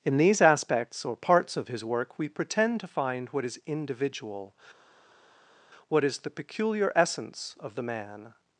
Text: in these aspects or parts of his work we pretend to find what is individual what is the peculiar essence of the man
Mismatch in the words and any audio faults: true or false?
false